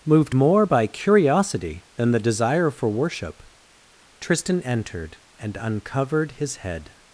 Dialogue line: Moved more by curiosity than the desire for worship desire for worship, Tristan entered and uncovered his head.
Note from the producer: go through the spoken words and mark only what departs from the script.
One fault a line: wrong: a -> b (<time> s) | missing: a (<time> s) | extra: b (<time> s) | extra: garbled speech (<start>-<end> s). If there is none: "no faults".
missing: desire for worship (3.4 s)